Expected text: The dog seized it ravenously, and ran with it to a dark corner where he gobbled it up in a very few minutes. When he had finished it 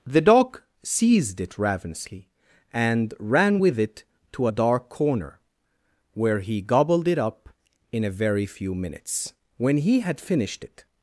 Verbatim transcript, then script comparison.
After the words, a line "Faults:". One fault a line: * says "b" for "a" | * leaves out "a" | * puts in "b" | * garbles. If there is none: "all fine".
The dog seized it ravenously, and ran with it to a dark corner where he gobbled it up in a very few minutes. When he had finished it
Faults:
all fine